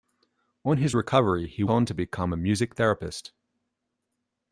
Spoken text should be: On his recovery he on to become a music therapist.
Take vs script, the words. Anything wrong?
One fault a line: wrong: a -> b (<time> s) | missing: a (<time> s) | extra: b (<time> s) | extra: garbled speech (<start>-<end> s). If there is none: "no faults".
no faults